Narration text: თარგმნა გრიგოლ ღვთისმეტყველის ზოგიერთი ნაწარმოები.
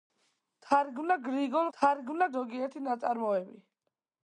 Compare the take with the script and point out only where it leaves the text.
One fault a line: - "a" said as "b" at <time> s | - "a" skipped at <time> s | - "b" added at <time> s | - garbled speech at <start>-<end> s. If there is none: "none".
- "ღვთისმეტყველის" said as "თარგმნა" at 1.8 s